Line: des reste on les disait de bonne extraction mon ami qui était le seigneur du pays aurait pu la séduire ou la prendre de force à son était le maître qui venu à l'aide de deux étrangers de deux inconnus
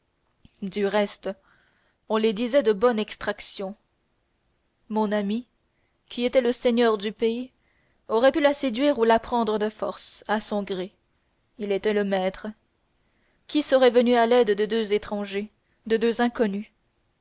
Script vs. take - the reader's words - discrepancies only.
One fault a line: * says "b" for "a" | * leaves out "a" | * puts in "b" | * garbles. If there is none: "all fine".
* says "du" for "des"
* puts in "gré il"
* puts in "serait"